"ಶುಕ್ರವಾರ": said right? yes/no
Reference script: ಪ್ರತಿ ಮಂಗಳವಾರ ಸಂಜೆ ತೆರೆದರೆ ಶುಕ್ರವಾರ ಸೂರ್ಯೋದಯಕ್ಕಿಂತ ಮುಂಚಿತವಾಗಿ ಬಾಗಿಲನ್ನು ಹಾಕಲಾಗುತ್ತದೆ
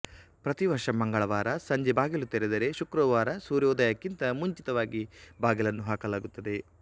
yes